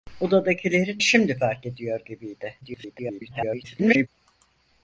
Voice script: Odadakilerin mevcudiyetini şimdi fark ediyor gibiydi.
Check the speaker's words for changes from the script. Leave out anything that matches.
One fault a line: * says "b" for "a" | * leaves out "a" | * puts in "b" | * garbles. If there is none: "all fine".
* leaves out "mevcudiyetini"
* garbles